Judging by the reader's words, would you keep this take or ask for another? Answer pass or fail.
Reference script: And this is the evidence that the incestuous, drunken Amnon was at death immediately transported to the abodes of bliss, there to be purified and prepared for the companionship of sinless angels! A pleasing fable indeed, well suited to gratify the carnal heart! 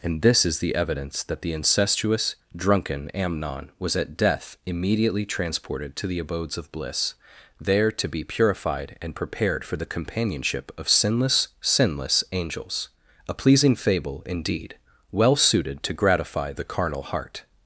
fail